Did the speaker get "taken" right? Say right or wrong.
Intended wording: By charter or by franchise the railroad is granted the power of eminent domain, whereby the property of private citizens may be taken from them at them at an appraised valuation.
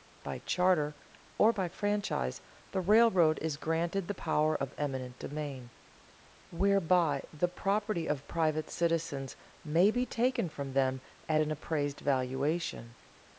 right